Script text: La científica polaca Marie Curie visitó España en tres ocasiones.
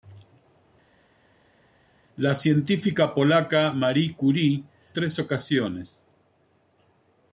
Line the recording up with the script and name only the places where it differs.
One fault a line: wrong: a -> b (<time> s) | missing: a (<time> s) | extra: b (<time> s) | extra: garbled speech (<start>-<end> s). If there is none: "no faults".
missing: visitó España en (4.6 s)